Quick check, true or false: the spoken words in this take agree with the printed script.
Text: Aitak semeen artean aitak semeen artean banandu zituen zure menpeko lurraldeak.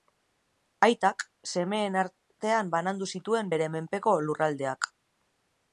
false